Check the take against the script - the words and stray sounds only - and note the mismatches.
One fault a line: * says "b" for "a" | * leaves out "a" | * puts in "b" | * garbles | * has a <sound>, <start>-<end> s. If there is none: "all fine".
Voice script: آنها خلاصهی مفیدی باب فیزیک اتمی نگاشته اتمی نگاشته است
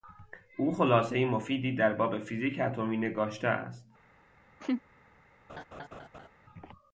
* says "او" for "آنها"
* puts in "در"
* leaves out "اتمی نگاشته"
* has a laugh, 4.6-4.8 s
* has a laugh, 5.5-6.3 s